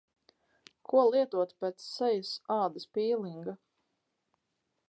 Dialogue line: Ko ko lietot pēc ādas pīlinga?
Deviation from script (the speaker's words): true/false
true